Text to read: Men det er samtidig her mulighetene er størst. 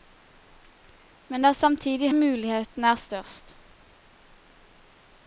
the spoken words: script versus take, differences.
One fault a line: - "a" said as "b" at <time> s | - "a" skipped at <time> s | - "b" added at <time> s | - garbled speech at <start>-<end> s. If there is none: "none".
- "her" skipped at 2.1 s